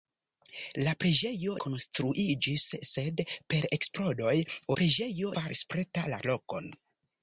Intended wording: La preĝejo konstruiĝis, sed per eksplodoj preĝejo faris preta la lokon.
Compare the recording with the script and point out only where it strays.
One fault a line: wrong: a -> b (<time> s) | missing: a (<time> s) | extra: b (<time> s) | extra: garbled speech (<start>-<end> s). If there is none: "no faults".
no faults